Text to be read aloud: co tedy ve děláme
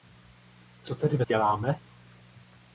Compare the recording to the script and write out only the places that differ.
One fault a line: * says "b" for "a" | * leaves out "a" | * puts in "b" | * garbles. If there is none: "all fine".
all fine